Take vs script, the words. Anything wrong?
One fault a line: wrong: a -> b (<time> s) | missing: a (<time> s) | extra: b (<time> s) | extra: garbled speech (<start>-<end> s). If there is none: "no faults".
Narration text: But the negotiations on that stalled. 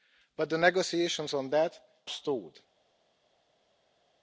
no faults